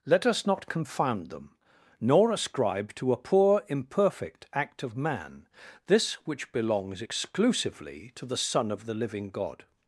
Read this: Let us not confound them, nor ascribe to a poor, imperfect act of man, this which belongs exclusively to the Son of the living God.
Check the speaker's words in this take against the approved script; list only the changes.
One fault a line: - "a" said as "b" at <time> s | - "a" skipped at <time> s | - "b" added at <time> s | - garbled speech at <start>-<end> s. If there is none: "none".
none